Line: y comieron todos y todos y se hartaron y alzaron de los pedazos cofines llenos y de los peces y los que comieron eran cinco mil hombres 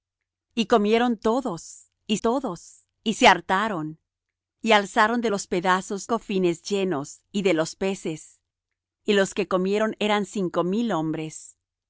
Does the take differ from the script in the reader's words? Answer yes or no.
no